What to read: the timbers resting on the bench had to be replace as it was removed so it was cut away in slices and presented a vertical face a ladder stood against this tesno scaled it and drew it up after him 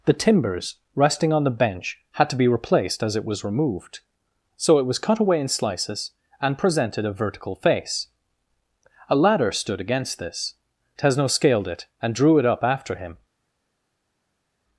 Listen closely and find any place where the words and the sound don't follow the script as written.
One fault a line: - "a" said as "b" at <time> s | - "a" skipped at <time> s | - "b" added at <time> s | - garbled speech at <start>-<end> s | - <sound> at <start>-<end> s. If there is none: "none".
- "replace" said as "replaced" at 2.5 s